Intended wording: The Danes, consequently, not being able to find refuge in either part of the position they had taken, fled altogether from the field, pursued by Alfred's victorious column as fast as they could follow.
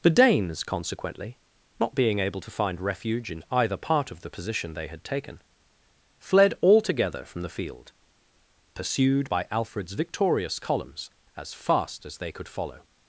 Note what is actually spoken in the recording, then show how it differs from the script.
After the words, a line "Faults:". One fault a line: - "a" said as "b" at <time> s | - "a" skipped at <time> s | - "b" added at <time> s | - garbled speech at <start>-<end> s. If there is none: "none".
The Danes, consequently, not being able to find refuge in either part of the position they had taken, fled altogether from the field, pursued by Alfred's victorious columns as fast as they could follow.
Faults:
- "column" said as "columns" at 10.6 s